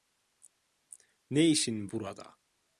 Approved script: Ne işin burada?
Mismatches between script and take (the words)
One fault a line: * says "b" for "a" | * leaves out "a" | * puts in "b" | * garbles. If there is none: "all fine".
all fine